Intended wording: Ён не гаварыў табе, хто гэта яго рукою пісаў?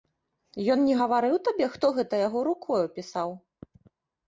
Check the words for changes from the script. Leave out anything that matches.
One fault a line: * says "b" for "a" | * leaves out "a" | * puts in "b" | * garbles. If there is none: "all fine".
all fine